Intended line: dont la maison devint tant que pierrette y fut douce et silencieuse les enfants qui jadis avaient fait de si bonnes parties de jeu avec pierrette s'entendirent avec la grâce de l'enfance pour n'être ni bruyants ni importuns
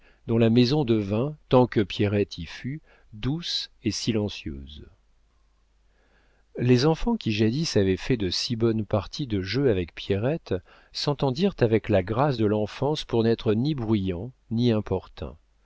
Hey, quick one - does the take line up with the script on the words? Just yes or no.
yes